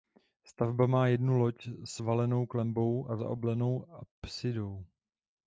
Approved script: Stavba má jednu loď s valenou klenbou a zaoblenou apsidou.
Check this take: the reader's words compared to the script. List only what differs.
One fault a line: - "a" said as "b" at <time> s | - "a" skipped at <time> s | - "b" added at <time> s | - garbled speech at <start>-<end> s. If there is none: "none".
none